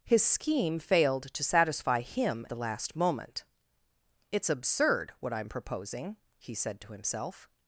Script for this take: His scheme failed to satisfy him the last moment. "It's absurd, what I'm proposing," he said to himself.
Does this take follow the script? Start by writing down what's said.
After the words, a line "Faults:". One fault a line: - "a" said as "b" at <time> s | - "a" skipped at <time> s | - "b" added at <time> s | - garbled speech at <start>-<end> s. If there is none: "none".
His scheme failed to satisfy him the last moment. "It's absurd, what I'm proposing," he said to himself.
Faults:
none